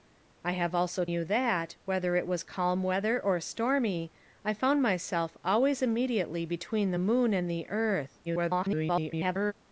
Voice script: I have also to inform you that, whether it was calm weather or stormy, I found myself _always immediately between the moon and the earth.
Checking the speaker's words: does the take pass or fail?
fail